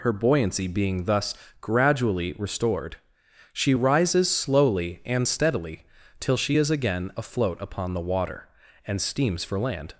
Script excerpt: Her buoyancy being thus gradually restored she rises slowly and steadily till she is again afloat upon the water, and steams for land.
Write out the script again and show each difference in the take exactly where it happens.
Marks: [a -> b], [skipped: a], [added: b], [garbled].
Her buoyancy being thus gradually restored she rises slowly and steadily till she is again afloat upon the water, and steams for land.